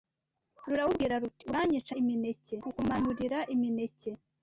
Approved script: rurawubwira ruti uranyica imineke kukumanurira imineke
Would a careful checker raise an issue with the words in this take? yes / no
no